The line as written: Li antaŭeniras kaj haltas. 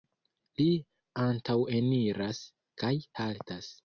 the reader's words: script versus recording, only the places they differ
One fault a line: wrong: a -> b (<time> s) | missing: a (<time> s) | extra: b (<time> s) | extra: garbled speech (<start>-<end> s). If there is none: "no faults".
no faults